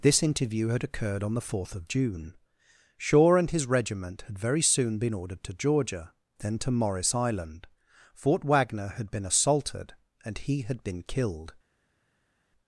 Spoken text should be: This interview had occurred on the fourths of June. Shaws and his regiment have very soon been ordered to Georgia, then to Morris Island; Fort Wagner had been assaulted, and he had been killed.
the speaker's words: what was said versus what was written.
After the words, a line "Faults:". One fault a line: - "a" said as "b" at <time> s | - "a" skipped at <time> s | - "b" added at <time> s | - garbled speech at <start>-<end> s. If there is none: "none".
This interview had occurred on the fourth of June. Shaw and his regiment had very soon been ordered to Georgia, then to Morris Island; Fort Wagner had been assaulted, and he had been killed.
Faults:
- "fourths" said as "fourth" at 1.5 s
- "Shaws" said as "Shaw" at 3.0 s
- "have" said as "had" at 4.2 s